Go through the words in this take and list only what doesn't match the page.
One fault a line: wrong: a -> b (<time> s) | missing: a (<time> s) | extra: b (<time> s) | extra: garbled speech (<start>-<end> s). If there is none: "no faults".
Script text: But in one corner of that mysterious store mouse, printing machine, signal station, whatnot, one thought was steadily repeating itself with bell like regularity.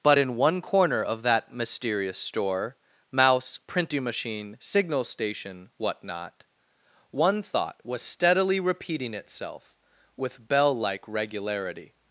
no faults